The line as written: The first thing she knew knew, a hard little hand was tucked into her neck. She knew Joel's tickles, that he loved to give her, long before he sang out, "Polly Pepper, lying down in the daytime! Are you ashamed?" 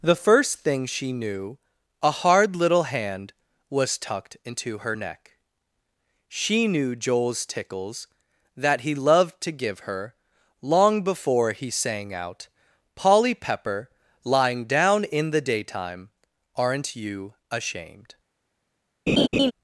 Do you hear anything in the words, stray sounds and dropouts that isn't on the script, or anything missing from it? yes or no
yes